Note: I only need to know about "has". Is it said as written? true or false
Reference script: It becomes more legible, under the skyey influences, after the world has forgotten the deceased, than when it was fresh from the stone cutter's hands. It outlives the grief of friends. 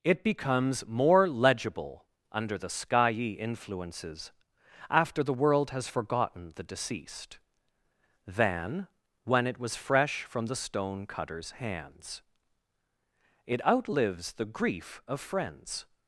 true